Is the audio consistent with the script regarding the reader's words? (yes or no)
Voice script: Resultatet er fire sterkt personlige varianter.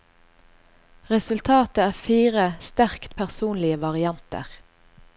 yes